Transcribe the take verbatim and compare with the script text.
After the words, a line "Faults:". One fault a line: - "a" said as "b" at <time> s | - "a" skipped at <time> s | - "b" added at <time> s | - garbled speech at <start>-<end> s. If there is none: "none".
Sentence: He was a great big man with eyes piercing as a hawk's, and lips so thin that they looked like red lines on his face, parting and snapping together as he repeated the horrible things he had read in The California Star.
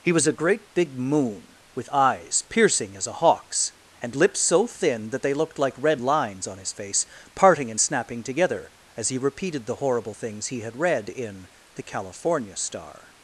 He was a great big moon with eyes piercing as a hawk's, and lips so thin that they looked like red lines on his face, parting and snapping together as he repeated the horrible things he had read in The California Star.
Faults:
- "man" said as "moon" at 1.0 s